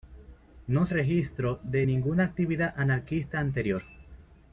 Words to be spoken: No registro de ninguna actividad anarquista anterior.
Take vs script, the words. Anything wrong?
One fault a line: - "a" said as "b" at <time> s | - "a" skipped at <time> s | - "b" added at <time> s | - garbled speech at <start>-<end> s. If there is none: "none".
none